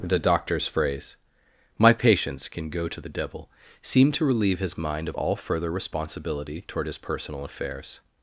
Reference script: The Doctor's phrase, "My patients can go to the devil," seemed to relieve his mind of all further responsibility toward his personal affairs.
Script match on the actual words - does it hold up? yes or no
yes